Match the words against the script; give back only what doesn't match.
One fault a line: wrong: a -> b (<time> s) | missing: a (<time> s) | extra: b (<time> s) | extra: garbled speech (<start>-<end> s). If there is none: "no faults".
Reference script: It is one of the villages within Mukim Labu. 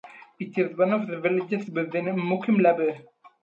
no faults